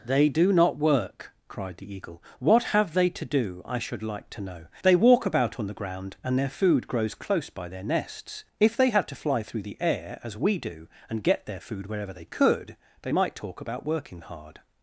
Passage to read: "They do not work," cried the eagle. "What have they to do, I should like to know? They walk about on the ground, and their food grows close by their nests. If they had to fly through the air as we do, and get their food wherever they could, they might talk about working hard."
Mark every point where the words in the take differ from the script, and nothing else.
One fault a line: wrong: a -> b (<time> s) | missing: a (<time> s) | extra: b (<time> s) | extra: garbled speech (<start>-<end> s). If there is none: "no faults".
no faults